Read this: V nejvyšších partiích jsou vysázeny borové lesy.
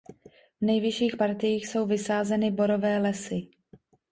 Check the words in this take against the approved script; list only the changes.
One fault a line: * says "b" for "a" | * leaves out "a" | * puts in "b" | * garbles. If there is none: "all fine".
all fine